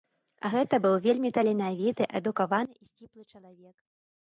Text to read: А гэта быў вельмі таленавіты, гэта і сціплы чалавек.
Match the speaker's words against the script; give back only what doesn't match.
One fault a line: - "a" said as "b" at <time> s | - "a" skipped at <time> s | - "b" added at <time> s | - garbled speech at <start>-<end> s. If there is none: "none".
- "гэта" said as "адукаваны" at 2.2 s